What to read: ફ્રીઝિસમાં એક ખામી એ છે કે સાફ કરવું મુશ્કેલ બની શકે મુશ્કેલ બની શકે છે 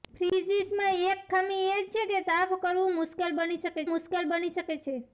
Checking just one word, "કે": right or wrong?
right